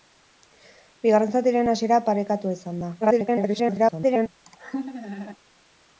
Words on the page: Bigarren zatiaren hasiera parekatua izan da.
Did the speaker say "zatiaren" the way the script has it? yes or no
yes